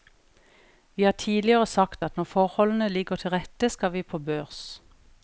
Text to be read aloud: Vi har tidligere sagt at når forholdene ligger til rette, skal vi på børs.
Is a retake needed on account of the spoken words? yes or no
no